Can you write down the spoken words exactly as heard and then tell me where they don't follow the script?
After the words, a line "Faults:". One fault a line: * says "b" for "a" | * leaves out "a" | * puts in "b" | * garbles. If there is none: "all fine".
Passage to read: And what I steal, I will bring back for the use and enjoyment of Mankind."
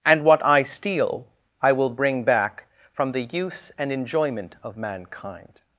And what I steal, I will bring back from the use and enjoyment of Mankind."
Faults:
* says "from" for "for"